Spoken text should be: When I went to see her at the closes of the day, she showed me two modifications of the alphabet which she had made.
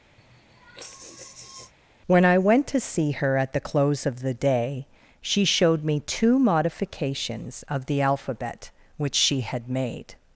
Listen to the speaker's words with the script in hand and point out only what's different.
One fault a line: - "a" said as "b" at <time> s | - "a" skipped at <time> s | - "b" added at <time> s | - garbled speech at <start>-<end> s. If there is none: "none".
- "closes" said as "close" at 3.6 s